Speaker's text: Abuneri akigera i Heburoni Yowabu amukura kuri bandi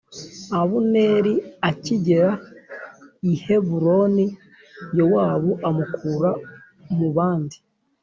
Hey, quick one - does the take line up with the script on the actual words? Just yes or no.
no